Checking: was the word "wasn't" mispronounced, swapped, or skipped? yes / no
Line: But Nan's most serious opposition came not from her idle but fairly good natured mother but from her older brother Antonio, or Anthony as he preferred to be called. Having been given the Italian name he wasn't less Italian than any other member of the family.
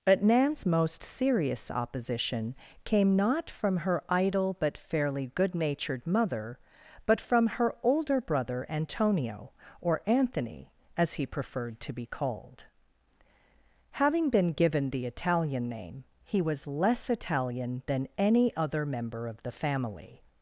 yes